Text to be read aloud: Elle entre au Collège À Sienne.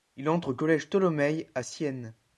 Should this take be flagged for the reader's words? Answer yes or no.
yes